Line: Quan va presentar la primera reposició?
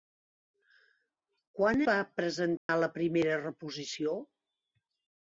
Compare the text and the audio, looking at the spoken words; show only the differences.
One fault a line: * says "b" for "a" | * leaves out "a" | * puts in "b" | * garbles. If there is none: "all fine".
all fine